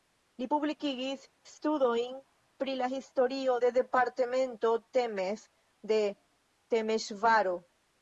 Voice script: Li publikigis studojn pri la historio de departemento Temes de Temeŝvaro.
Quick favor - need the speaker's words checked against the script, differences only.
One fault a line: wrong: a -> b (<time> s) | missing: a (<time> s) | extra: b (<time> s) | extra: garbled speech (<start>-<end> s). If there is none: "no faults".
no faults